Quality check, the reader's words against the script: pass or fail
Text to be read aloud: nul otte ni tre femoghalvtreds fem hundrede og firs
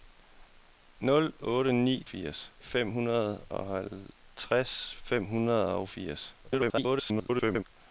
fail